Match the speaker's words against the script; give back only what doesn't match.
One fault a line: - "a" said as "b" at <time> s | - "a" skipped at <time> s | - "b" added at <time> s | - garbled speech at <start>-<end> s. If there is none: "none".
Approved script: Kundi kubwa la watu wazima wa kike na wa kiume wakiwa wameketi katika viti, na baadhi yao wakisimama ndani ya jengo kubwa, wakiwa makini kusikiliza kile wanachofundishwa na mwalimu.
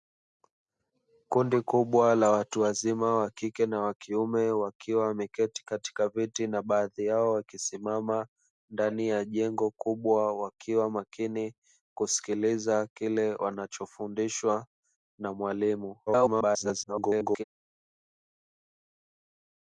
- garbled speech at 16.1-17.4 s